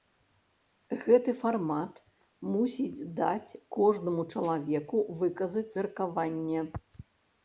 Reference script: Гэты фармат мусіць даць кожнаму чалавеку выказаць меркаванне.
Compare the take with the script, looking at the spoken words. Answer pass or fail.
pass